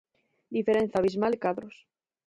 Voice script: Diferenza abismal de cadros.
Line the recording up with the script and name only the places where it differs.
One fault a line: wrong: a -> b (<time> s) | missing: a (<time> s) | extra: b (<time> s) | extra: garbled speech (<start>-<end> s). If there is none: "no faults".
no faults